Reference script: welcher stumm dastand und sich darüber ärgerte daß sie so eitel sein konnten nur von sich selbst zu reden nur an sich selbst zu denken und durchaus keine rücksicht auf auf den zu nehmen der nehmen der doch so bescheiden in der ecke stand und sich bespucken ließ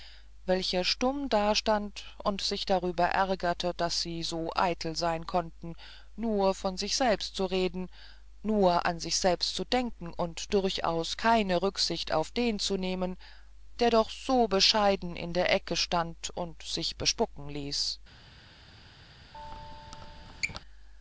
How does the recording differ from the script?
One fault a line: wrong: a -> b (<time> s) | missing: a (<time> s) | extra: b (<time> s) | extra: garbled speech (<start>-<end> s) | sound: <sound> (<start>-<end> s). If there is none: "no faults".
missing: auf (12.3 s)
missing: nehmen der (13.9 s)
sound: squeak (19.3-20.6 s)